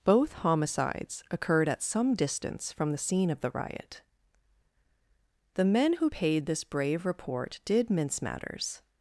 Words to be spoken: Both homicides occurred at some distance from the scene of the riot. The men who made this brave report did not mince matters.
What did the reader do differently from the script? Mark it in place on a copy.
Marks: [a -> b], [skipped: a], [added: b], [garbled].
Both homicides occurred at some distance from the scene of the riot. The men who [made -> paid] this brave report did [skipped: not] mince matters.